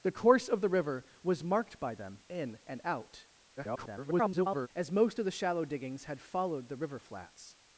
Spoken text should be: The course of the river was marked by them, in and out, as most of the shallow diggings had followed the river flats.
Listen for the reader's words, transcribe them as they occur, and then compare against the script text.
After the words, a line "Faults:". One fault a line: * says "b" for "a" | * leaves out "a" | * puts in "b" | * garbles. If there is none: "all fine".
The course of the river was marked by them, in and out, [garbled] as most of the shallow diggings had followed the river flats.
Faults:
* garbles